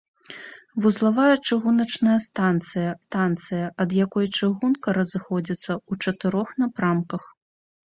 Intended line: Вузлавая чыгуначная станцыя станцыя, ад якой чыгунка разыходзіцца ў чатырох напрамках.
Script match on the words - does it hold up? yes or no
yes